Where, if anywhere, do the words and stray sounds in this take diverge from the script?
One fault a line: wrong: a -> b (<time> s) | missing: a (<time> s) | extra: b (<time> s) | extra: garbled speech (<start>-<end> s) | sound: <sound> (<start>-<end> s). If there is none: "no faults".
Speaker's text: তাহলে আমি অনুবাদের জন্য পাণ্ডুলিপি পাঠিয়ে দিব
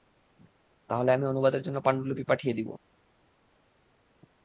no faults